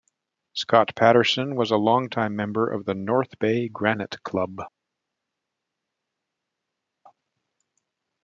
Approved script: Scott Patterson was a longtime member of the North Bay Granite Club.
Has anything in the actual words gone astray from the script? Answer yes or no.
no